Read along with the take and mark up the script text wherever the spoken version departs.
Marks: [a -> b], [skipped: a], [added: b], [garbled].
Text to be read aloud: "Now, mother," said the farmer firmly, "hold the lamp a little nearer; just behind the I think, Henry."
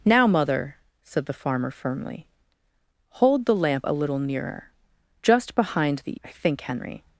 "Now, mother," said the farmer firmly, "hold the lamp a little nearer; just behind the I think, Henry."